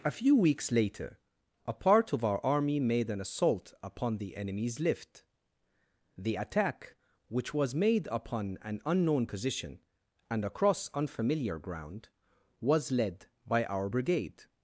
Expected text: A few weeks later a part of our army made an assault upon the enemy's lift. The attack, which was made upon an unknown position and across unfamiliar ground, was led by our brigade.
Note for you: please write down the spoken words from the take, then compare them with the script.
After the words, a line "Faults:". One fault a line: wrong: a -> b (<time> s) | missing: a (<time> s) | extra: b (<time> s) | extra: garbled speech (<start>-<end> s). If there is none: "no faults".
A few weeks later a part of our army made an assault upon the enemy's lift. The attack, which was made upon an unknown position and across unfamiliar ground, was led by our brigade.
Faults:
no faults